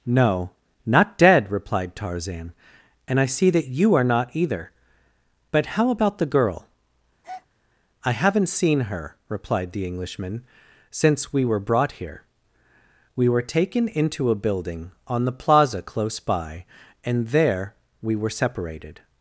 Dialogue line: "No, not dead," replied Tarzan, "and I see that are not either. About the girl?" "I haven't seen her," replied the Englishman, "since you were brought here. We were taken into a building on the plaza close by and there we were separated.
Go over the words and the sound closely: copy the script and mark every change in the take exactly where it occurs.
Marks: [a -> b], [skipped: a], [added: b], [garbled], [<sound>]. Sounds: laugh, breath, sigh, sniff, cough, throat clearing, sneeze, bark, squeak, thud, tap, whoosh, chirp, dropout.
"No, not dead," replied Tarzan, "and I see that [added: you] are not either. [added: But how] About the girl?" [breath] "I haven't seen her," replied the Englishman, "since [you -> we] were brought here. We were taken into a building on the plaza close by and there we were separated.